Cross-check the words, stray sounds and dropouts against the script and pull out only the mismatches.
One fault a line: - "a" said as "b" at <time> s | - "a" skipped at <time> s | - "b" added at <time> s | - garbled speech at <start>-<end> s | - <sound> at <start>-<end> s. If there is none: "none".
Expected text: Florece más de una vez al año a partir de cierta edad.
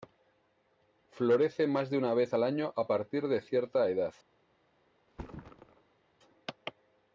- thud at 5.1-6.0 s